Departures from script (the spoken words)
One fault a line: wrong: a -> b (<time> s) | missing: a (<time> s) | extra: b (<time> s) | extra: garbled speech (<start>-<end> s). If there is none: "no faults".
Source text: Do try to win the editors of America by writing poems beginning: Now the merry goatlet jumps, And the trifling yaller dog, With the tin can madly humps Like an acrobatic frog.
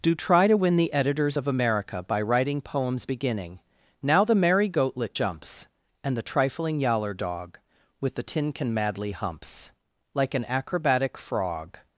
no faults